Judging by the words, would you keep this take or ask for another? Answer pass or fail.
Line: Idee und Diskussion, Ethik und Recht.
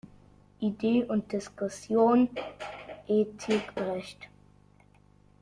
fail